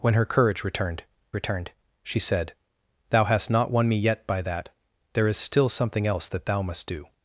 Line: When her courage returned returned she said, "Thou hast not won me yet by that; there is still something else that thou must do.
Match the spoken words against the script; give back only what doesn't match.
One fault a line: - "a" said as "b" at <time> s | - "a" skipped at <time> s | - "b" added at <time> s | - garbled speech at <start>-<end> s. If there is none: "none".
none